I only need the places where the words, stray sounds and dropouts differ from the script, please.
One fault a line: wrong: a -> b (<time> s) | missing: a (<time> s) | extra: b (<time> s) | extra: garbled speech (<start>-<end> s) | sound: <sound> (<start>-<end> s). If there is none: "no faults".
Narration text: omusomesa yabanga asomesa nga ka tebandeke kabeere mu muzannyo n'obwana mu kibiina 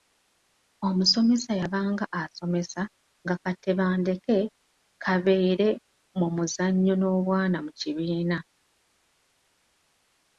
no faults